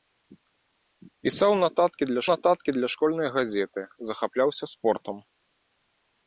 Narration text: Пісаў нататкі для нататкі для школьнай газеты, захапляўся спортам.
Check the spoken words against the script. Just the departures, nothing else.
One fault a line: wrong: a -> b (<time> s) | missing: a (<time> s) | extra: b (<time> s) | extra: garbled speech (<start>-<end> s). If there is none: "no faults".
no faults